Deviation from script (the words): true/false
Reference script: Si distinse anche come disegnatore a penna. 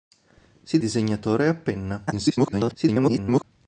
true